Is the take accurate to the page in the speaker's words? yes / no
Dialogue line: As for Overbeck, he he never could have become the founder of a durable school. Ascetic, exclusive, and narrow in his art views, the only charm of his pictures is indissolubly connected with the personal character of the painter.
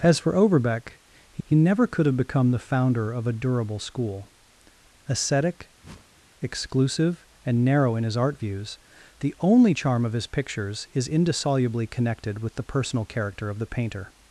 yes